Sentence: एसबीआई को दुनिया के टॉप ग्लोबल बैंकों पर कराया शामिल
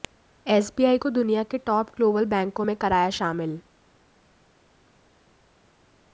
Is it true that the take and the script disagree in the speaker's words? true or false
true